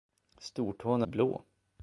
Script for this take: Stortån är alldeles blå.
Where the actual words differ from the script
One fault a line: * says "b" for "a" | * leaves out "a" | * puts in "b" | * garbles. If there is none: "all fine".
* leaves out "alldeles"